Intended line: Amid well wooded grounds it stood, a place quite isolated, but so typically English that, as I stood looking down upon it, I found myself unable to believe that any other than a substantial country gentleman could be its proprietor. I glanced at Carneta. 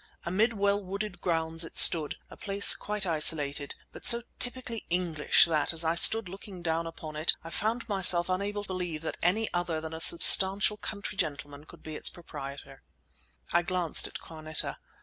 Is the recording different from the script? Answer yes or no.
yes